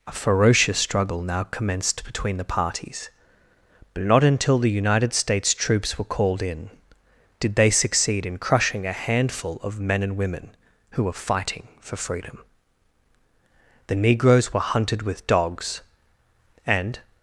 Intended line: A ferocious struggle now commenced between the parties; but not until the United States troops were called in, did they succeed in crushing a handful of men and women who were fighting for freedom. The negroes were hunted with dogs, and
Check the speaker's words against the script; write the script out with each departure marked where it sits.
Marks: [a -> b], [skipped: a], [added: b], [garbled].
A ferocious struggle now commenced between the parties; but not until the United States troops were called in, did they succeed in crushing a handful of men and women who were fighting for freedom. The negroes were hunted with dogs, and